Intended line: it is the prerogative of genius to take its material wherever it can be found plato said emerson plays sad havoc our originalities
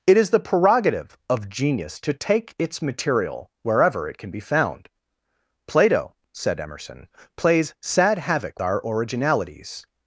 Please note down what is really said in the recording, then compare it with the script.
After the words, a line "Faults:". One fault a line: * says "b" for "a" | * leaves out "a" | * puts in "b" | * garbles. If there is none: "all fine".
it is the prerogative of genius to take its material wherever it can be found plato said emerson plays sad havoc our originalities
Faults:
all fine